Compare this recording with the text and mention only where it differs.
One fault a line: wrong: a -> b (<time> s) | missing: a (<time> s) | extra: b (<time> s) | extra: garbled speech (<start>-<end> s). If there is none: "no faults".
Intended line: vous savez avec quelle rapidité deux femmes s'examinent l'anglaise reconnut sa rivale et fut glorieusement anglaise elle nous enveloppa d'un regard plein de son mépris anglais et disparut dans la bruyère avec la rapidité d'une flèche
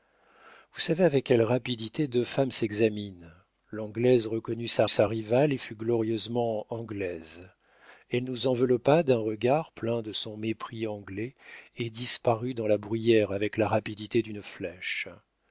extra: sa (4.9 s)